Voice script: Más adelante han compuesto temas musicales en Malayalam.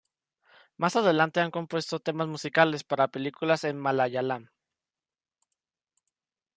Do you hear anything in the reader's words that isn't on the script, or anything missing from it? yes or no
yes